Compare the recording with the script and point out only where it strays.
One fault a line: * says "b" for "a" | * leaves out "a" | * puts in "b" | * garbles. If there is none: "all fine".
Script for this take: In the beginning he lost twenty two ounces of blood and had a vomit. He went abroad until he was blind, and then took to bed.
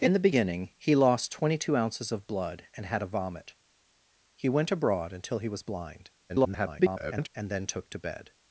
* garbles